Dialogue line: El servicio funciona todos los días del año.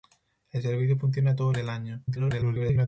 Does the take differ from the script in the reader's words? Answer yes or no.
yes